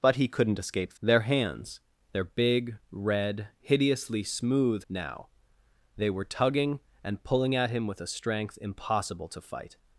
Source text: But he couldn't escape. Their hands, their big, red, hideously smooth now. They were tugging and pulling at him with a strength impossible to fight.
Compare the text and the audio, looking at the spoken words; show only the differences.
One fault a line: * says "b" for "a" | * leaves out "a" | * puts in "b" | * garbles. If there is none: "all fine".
all fine